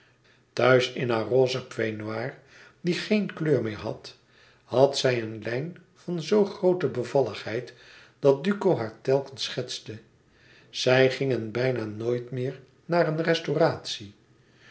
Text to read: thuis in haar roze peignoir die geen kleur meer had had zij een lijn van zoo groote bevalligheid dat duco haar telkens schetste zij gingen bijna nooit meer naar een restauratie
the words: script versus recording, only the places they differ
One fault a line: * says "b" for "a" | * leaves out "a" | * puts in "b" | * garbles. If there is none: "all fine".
all fine